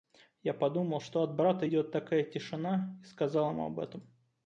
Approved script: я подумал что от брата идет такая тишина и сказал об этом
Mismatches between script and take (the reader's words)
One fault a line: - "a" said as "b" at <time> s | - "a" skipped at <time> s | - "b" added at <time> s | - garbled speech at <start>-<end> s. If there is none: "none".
- "ему" added at 3.5 s